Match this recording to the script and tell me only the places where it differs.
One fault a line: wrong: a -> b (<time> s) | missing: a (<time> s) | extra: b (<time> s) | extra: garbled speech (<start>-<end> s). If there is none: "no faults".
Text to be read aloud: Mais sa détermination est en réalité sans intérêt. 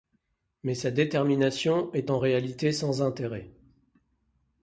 no faults